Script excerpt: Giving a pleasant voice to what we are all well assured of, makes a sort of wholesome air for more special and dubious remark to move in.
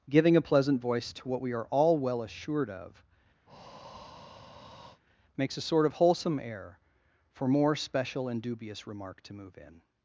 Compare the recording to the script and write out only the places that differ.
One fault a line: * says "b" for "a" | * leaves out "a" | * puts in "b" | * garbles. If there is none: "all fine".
all fine